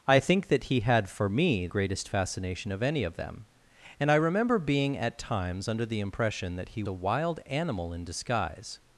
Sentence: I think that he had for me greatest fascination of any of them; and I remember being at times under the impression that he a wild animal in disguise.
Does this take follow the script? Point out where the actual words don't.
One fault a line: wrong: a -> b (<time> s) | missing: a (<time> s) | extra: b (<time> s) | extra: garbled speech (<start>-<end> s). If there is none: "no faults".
no faults